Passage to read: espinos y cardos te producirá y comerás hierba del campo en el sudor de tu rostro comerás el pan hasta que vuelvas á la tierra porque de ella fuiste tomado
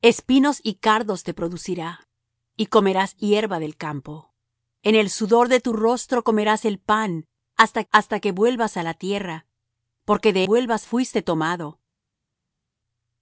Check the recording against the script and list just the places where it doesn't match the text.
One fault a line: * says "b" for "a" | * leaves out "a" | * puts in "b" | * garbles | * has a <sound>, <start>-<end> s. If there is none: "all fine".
* puts in "hasta"
* says "vuelvas" for "ella"